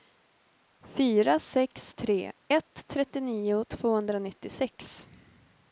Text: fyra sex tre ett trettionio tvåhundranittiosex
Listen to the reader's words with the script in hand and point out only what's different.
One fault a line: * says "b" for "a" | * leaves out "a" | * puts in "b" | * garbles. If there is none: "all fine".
all fine